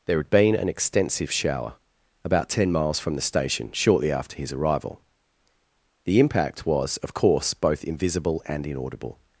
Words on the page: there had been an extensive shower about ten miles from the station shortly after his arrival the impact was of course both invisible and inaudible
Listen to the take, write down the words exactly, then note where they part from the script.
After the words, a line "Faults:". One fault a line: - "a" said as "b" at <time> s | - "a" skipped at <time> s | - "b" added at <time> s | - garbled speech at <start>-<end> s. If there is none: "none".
there had been an extensive shower about ten miles from the station shortly after his arrival the impact was of course both invisible and inaudible
Faults:
none